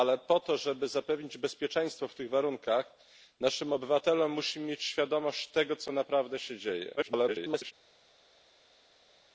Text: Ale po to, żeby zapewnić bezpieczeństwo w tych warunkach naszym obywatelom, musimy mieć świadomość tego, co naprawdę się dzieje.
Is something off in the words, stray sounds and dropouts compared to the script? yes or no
yes